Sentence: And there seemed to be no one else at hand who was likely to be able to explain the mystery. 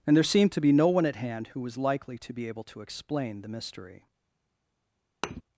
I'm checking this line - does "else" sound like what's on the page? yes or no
no